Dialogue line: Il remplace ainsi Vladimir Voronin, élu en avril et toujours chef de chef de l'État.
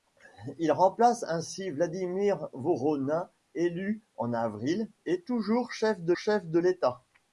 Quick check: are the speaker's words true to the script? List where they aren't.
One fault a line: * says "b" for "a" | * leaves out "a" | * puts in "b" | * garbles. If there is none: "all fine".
all fine